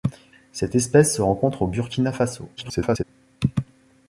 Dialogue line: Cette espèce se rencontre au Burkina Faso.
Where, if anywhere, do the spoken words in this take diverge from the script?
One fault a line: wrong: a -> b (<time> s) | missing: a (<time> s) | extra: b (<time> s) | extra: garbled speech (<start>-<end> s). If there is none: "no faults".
extra: garbled speech (2.6-3.0 s)